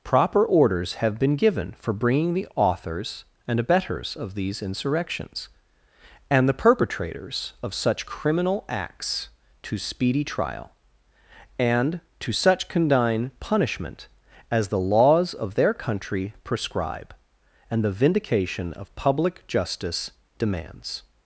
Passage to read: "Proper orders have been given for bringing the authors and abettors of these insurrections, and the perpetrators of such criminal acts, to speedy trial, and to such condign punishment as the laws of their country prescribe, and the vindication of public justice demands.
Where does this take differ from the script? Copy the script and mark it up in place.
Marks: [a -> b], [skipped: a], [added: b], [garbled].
"Proper orders have been given for bringing the authors and abettors of these insurrections, and the perpetrators of such criminal acts, to speedy trial, and to such condign punishment as the laws of their country prescribe, and the vindication of public justice demands.